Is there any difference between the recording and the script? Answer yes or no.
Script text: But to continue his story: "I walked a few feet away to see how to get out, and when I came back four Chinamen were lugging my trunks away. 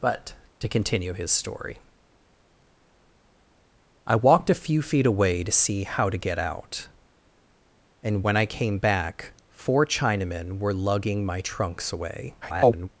yes